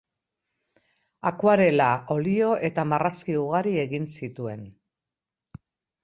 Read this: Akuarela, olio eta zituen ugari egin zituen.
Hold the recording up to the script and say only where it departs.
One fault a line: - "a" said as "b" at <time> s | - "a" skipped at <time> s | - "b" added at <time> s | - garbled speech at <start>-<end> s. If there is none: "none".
- "zituen" said as "marrazki" at 2.9 s